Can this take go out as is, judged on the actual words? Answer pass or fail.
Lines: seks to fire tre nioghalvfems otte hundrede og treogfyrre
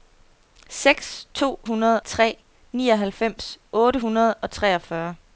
fail